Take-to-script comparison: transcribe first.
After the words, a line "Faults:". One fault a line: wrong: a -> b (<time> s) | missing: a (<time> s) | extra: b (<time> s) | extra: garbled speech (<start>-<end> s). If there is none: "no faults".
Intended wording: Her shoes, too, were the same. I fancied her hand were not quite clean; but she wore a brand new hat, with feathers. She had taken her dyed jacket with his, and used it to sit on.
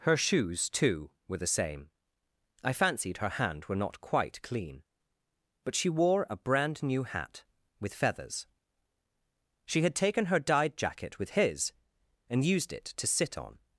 Her shoes, too, were the same. I fancied her hand were not quite clean; but she wore a brand new hat, with feathers. She had taken her dyed jacket with his, and used it to sit on.
Faults:
no faults